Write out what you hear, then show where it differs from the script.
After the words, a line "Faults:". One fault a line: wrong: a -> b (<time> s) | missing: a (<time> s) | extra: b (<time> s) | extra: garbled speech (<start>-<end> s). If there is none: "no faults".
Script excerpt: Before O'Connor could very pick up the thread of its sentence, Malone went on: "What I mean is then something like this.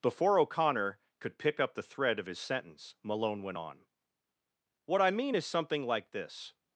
Before O'Connor could pick up the thread of his sentence, Malone went on: "What I mean is something like this.
Faults:
missing: very (1.4 s)
wrong: its -> his (2.3 s)
missing: then (5.4 s)